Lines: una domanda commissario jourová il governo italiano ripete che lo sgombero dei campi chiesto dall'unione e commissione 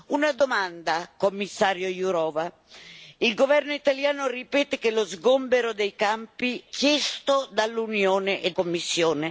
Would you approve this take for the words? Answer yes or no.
yes